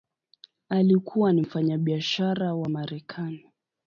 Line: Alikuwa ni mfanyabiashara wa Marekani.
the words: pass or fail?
pass